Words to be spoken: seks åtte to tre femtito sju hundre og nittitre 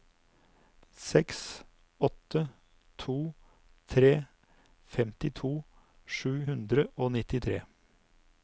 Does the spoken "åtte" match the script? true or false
true